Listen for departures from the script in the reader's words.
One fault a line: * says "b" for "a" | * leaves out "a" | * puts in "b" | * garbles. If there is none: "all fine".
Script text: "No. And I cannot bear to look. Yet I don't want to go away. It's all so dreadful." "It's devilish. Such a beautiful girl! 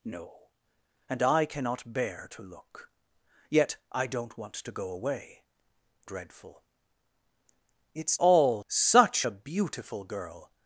* leaves out "It's all so"
* says "all" for "devilish"